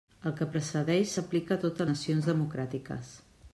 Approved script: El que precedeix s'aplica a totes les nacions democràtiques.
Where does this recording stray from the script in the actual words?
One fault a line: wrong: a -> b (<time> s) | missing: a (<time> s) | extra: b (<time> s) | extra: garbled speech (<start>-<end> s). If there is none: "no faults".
missing: les (1.9 s)